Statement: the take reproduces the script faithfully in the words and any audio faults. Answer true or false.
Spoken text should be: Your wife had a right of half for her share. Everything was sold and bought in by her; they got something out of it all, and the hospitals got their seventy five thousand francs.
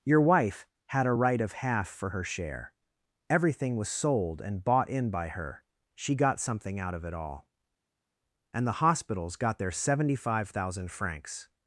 false